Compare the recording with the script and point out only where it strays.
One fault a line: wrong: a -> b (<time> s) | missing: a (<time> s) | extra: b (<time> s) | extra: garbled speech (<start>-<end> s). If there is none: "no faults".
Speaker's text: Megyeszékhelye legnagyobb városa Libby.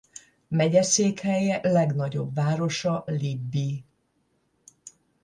no faults